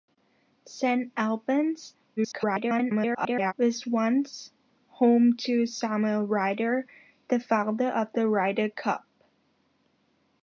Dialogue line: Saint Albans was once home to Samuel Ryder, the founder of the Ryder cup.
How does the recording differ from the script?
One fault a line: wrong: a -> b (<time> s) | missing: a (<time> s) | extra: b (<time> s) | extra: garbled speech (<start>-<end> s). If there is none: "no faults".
extra: garbled speech (2.2-3.5 s)